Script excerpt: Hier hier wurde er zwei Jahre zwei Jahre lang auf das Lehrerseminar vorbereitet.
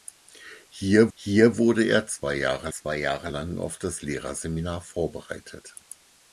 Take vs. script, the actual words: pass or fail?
pass